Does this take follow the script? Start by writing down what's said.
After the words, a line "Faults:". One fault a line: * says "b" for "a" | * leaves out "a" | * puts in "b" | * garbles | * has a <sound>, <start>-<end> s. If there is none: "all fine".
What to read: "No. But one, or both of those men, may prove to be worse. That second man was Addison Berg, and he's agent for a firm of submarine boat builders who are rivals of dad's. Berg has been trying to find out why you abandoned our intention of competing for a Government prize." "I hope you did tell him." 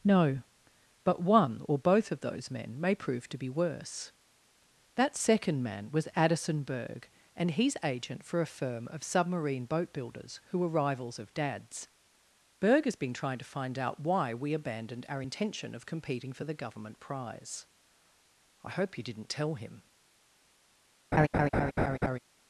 "No. But one, or both of those men, may prove to be worse. That second man was Addison Berg, and he's agent for a firm of submarine boat builders who are rivals of dad's. Berg has been trying to find out why we abandoned our intention of competing for the Government prize." "I hope you didn't tell him."
Faults:
* says "we" for "you"
* says "the" for "a"
* says "didn't" for "did"
* has a laugh, 21.1-22.2 s